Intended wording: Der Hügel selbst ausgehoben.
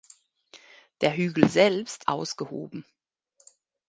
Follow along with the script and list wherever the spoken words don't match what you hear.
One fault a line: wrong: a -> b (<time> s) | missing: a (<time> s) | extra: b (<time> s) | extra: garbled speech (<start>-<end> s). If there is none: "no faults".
no faults